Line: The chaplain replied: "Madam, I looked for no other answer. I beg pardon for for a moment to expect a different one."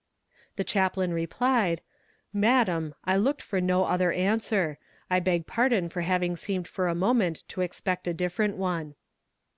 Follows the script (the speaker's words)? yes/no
no